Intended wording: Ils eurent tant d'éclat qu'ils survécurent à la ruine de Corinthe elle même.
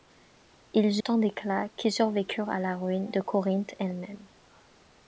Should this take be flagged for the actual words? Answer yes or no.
yes